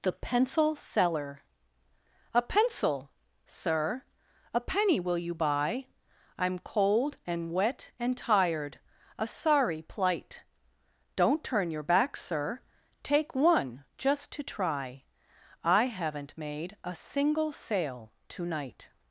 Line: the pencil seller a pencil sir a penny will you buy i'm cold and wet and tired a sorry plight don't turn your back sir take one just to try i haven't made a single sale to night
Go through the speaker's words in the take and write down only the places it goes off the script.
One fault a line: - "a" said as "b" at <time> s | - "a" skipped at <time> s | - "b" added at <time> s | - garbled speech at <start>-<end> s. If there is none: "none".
none